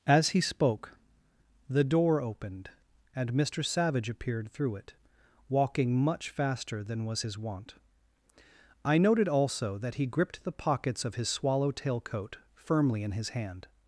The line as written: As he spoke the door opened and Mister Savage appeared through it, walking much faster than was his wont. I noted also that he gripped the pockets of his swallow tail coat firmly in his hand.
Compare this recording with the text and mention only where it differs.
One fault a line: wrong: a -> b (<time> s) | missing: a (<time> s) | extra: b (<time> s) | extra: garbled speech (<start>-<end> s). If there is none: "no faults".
no faults